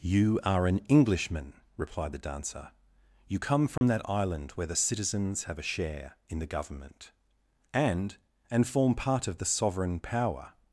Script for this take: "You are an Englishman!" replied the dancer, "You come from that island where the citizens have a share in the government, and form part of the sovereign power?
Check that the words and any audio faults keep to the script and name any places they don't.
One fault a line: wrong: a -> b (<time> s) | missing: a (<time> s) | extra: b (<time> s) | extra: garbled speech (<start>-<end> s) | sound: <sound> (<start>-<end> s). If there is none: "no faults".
sound: dropout (3.8-3.8 s)
extra: and (8.5 s)